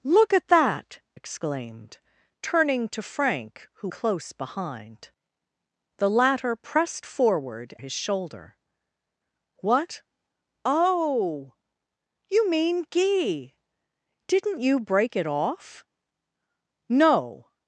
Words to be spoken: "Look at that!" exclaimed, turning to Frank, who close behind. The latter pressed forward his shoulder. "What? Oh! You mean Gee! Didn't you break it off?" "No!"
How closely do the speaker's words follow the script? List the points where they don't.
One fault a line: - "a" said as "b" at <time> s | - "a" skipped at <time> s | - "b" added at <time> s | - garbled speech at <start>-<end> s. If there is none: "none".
none